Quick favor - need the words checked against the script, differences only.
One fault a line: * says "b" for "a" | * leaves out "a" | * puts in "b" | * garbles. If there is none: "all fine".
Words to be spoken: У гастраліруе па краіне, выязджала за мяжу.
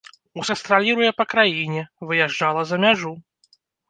all fine